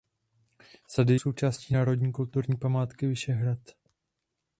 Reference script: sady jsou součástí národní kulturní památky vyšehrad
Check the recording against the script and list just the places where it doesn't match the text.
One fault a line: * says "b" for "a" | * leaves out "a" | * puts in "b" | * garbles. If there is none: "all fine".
* leaves out "jsou"